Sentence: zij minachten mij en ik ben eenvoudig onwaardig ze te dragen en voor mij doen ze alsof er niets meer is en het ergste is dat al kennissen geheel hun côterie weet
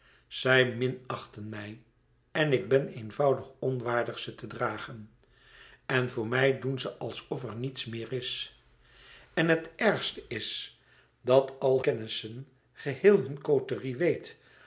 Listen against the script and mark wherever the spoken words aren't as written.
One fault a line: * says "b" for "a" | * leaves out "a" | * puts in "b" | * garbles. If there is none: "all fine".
all fine